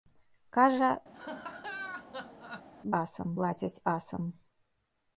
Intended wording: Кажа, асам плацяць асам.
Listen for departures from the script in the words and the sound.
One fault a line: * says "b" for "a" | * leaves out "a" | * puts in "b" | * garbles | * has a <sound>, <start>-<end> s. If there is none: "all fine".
* has a laugh, 1.1-2.7 s